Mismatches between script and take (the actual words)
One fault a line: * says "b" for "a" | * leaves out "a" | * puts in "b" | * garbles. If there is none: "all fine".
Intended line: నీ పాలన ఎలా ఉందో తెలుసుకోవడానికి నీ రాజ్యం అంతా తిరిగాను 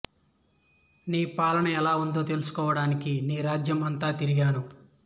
all fine